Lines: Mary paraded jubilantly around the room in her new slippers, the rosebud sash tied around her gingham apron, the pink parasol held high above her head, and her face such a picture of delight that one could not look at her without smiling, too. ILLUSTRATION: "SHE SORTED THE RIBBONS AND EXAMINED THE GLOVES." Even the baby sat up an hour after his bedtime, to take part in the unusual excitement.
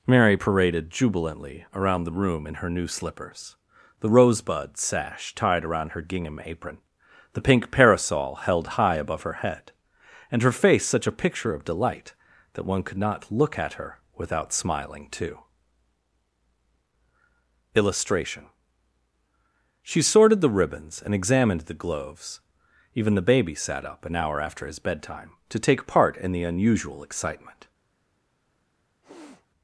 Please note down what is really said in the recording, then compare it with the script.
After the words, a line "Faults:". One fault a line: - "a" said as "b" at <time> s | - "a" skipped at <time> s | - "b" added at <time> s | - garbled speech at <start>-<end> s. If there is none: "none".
Mary paraded jubilantly around the room in her new slippers, the rosebud sash tied around her gingham apron, the pink parasol held high above her head, and her face such a picture of delight that one could not look at her without smiling, too. ILLUSTRATION: "SHE SORTED THE RIBBONS AND EXAMINED THE GLOVES." Even the baby sat up an hour after his bedtime, to take part in the unusual excitement.
Faults:
none